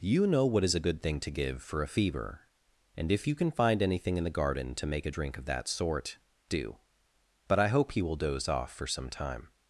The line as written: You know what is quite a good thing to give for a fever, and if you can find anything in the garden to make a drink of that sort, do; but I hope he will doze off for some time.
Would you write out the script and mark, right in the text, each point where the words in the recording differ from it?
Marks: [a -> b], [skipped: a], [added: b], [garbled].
You know what is [skipped: quite] a good thing to give for a fever, and if you can find anything in the garden to make a drink of that sort, do; but I hope he will doze off for some time.